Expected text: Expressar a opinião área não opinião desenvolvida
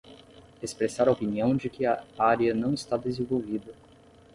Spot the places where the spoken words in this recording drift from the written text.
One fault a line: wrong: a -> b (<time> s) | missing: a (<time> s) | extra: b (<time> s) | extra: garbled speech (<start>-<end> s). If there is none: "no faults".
extra: de que a (1.5 s)
wrong: opinião -> está (2.7 s)